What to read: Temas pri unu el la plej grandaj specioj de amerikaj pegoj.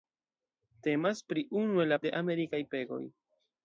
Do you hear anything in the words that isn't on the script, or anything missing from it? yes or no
yes